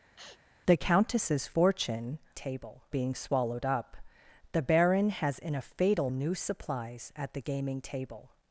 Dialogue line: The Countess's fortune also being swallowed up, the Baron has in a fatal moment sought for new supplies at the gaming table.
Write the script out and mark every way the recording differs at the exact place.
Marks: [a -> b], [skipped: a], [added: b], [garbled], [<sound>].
[sneeze] The Countess's fortune [also -> table] being swallowed up, the Baron has in a fatal [skipped: moment sought for] new supplies at the gaming table.